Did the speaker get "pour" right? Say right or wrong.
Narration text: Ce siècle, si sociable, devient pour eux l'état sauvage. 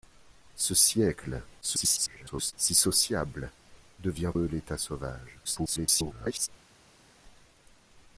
wrong